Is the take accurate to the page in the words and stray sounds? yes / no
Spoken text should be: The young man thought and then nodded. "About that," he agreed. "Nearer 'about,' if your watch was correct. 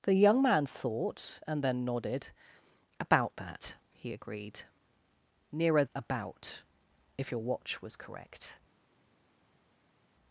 yes